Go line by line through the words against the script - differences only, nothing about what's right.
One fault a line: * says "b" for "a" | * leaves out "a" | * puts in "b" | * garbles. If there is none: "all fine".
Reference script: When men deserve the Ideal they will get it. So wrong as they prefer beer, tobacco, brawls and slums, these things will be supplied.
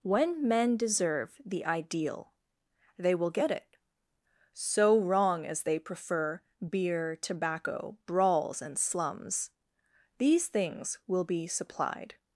all fine